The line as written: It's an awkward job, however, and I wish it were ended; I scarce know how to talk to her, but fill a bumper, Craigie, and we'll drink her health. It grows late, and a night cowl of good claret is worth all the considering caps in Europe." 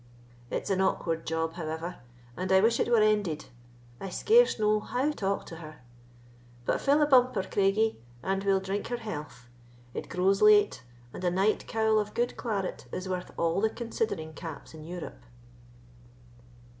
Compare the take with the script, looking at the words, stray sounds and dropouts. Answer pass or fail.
fail